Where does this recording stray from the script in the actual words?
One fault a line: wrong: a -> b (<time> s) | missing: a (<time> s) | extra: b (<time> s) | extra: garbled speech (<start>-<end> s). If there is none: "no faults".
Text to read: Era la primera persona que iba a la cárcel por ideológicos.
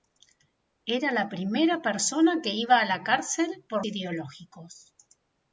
no faults